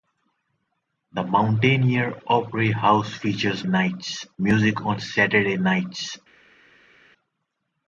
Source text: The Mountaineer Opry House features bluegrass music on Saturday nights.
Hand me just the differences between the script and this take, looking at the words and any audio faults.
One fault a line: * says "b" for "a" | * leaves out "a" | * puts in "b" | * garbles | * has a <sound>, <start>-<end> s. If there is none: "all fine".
* says "nights" for "bluegrass"